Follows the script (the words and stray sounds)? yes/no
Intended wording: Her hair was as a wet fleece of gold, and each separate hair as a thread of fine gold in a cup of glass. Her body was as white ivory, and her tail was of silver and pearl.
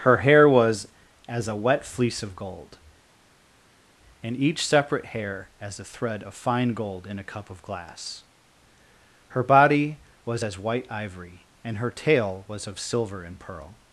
yes